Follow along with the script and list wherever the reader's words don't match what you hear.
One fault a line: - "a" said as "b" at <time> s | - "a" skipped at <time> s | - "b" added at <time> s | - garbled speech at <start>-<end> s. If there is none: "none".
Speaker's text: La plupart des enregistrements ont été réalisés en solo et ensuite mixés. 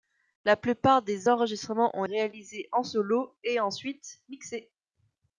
- "été" skipped at 2.0 s